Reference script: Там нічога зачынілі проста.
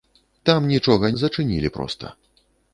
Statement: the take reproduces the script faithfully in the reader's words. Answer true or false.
true